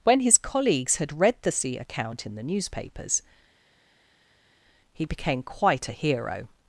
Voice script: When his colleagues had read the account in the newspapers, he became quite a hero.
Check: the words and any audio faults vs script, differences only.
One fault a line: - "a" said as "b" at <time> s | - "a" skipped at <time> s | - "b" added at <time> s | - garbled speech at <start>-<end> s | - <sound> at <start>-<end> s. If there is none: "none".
- "sea" added at 1.5 s